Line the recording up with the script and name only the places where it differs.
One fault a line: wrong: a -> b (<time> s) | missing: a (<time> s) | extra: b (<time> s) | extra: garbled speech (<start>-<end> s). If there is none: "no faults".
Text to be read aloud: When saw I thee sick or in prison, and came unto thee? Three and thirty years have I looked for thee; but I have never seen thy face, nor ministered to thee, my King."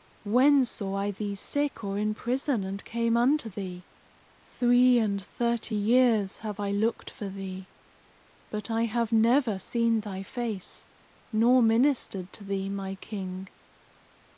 no faults